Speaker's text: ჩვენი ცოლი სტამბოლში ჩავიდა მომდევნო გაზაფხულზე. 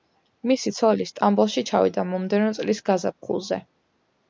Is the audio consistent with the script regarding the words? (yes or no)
no